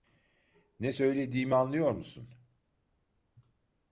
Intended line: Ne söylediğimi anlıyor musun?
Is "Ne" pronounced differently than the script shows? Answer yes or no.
no